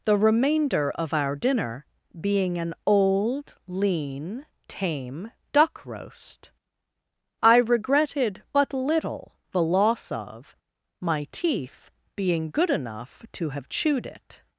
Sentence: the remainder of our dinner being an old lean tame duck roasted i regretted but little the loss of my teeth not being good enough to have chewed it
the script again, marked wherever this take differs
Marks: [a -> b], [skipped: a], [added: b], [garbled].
the remainder of our dinner being an old lean tame duck [roasted -> roast] i regretted but little the loss of my teeth [skipped: not] being good enough to have chewed it